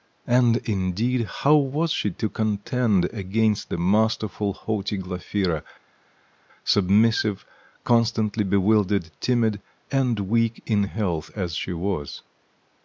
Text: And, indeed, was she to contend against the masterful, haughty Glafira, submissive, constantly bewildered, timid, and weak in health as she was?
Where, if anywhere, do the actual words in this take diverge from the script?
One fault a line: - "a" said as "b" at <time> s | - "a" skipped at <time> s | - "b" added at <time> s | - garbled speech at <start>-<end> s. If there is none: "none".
- "how" added at 1.3 s